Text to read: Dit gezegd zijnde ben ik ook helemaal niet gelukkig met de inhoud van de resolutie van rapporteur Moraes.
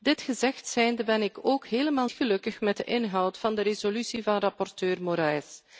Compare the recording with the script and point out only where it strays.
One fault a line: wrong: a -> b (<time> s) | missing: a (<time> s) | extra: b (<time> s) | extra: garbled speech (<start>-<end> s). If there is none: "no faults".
missing: niet (2.1 s)